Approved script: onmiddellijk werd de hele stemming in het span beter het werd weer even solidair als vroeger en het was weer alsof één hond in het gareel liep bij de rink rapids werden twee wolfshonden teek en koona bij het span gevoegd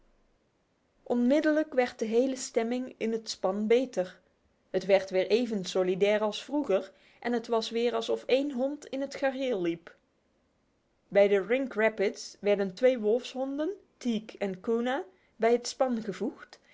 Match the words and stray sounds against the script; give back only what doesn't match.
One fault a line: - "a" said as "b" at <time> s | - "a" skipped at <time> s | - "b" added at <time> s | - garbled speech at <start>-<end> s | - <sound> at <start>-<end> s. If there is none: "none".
none